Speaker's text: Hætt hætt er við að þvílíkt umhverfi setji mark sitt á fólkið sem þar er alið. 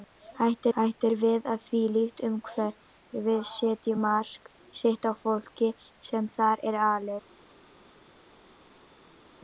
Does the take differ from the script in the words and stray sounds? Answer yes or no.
no